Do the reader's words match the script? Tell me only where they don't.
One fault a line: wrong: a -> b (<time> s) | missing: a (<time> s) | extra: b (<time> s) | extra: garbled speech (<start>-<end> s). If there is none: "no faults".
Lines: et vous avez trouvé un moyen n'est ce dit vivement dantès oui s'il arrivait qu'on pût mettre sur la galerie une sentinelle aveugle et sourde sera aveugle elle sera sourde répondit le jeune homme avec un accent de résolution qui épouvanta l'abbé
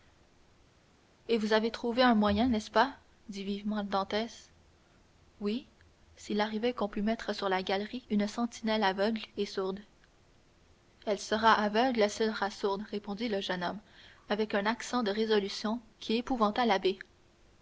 extra: pas (2.7 s)
extra: elle (11.0 s)